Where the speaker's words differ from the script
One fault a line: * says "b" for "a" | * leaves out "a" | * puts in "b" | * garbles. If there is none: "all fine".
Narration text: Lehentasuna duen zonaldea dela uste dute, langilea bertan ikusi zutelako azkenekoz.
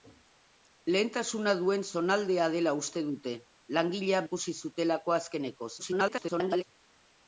* leaves out "bertan"
* garbles